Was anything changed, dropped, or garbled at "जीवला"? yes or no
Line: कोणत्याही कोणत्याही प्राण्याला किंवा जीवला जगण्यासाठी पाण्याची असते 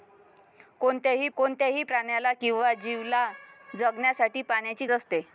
no